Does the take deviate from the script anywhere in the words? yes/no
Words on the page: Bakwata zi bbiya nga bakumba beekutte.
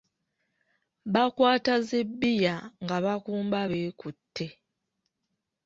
no